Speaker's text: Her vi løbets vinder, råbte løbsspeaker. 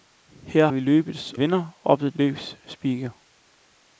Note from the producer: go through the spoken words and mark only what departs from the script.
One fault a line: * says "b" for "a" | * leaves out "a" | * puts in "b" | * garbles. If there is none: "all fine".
all fine